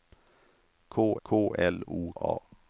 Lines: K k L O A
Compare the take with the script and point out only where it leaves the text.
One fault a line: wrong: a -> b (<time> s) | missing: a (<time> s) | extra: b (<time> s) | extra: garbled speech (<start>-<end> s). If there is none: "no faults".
no faults